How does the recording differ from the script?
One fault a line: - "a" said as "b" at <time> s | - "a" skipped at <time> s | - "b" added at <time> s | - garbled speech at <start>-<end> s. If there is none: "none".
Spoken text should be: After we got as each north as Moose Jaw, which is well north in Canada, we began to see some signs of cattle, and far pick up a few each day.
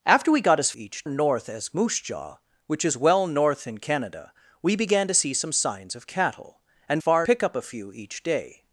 none